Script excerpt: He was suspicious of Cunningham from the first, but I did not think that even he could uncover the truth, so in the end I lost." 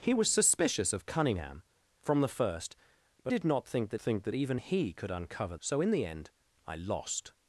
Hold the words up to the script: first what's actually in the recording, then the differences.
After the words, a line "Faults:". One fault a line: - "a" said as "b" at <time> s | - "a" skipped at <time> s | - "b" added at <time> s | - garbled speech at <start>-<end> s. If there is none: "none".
He was suspicious of Cunningham from the first, but did not think that think that even he could uncover so in the end I lost."
Faults:
- "I" skipped at 3.3 s
- "think that" added at 4.0 s
- "the truth" skipped at 5.6 s